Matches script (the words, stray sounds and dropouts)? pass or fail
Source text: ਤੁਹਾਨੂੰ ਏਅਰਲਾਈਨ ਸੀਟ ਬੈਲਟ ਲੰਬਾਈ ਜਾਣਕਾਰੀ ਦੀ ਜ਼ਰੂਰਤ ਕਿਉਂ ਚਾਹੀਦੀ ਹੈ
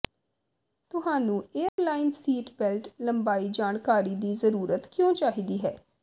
fail